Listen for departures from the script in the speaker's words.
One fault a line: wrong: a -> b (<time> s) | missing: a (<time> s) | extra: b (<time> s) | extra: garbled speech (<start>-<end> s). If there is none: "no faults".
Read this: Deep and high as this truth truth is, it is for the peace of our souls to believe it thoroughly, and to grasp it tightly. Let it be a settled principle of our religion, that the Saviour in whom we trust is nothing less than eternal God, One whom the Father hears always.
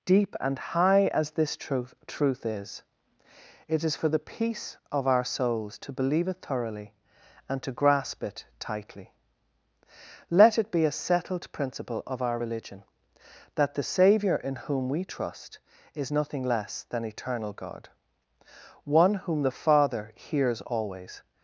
no faults